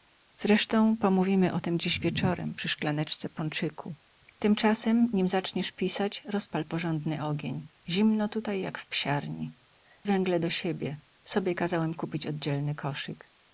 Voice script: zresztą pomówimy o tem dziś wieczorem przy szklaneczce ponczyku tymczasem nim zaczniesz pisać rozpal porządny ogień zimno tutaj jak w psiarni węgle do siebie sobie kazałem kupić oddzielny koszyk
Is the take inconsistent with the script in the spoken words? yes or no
no